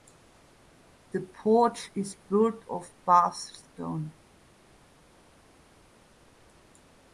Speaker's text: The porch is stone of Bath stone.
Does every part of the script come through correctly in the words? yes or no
no